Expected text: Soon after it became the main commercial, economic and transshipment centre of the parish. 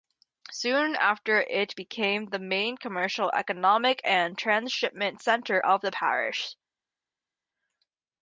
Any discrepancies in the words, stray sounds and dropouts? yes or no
no